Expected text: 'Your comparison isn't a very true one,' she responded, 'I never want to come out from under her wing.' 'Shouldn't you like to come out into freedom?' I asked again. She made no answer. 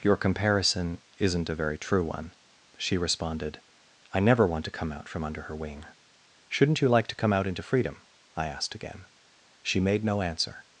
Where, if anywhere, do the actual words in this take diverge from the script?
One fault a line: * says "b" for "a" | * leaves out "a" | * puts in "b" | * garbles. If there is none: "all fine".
all fine